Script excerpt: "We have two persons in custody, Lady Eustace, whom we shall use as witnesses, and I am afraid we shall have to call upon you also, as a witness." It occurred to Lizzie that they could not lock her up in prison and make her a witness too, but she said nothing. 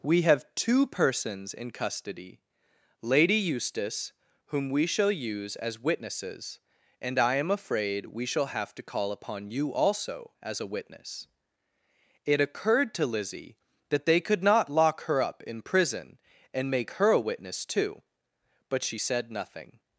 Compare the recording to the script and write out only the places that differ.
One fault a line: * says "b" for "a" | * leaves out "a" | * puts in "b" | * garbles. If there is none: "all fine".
all fine